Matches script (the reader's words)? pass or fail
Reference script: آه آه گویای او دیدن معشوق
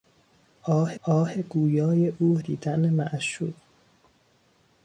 pass